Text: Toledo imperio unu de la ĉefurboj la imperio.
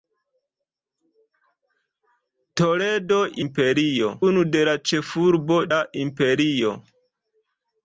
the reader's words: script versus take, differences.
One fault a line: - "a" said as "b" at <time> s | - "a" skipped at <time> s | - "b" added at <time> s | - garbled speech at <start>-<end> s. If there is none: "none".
none